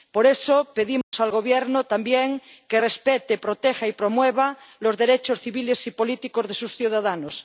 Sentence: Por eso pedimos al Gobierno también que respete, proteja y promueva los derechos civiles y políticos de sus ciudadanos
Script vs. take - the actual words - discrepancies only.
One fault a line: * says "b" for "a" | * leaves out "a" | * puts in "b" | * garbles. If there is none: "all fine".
all fine